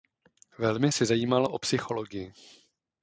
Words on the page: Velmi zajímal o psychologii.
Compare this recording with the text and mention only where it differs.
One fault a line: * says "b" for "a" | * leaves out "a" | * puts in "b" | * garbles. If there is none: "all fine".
* puts in "se"